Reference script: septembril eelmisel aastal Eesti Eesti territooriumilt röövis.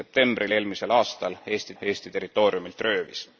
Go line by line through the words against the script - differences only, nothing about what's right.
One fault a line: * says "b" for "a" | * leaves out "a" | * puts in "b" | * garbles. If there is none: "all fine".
all fine